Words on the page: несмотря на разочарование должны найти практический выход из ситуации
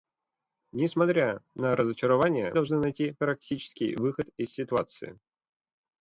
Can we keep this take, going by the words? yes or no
yes